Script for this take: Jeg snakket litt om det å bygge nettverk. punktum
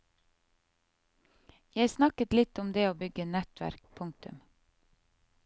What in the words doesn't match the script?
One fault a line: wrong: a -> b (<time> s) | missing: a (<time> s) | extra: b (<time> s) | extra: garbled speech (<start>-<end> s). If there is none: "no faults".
no faults